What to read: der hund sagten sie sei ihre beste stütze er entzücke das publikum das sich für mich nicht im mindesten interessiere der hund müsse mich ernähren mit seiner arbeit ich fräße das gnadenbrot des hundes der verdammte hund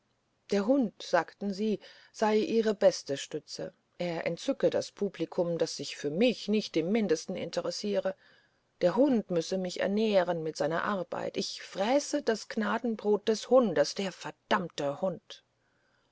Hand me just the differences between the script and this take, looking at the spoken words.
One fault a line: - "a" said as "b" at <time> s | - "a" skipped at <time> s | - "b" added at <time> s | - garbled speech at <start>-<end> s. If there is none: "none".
none